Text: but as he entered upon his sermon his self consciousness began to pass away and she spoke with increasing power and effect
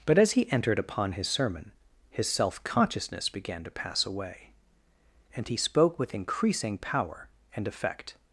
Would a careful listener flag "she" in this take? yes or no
yes